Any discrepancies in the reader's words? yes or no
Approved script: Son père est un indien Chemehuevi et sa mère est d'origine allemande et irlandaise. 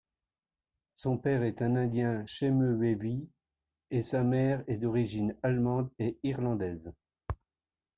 no